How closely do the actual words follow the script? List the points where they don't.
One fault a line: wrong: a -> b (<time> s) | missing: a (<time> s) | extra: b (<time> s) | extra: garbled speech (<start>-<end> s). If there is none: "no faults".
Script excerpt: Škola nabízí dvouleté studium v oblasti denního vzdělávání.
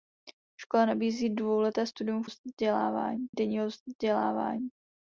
wrong: oblasti -> vzdělávání (2.2 s)